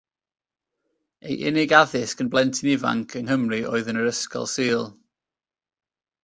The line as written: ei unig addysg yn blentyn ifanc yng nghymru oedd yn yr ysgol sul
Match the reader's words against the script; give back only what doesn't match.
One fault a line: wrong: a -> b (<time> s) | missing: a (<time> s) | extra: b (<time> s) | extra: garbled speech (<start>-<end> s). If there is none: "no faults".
no faults